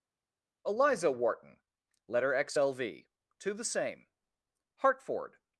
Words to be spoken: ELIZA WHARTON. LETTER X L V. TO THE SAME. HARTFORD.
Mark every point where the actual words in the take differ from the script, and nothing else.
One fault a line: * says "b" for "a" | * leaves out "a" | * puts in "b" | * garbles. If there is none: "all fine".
all fine